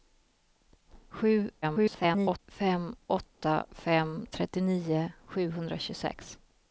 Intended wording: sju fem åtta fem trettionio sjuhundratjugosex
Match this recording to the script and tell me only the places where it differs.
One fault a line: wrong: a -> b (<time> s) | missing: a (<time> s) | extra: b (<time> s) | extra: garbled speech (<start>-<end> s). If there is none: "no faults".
extra: garbled speech (1.6-2.4 s)